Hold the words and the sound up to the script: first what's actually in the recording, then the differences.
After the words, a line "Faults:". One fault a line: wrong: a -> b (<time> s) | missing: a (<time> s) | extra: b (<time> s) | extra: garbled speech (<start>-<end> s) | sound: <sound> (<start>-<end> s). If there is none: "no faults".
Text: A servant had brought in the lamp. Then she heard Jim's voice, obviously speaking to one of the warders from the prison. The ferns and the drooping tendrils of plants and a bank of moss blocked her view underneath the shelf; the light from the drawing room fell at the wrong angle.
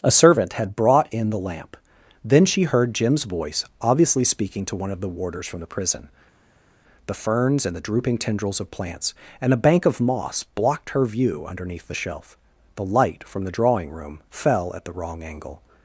A servant had brought in the lamp. Then she heard Jim's voice, obviously speaking to one of the warders from the prison. The ferns and the drooping tendrils of plants and a bank of moss blocked her view underneath the shelf; the light from the drawing room fell at the wrong angle.
Faults:
no faults